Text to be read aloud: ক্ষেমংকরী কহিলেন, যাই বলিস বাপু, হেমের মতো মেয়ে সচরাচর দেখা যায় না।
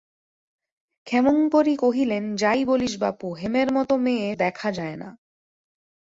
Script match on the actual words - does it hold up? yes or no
no